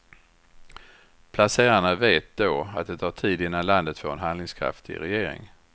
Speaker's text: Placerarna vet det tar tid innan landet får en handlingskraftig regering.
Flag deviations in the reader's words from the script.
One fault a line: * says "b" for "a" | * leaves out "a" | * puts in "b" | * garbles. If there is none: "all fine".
* puts in "då att"